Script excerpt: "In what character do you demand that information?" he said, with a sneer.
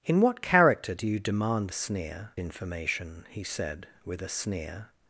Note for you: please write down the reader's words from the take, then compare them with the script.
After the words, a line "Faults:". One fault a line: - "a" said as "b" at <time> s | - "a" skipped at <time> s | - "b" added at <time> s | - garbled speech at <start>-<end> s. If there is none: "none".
"In what character do you demand sneer information?" he said, with a sneer.
Faults:
- "that" said as "sneer" at 1.7 s